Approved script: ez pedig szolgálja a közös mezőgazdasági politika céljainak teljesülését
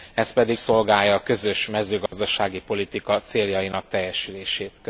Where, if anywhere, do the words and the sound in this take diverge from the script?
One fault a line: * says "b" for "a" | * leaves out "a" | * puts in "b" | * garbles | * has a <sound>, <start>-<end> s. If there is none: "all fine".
* has a dropout, 2.1-2.1 s